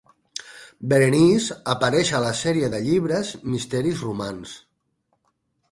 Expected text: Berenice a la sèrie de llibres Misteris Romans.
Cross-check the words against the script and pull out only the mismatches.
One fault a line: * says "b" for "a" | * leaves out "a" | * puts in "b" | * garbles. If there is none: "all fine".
* puts in "apareix"